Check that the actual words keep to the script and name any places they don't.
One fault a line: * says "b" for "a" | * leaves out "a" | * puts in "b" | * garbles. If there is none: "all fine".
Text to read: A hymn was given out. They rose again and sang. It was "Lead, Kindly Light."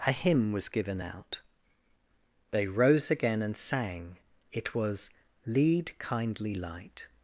all fine